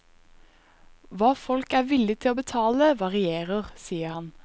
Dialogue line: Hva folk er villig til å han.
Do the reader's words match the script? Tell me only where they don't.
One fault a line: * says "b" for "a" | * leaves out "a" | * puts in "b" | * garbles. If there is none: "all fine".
* puts in "betale varierer sier"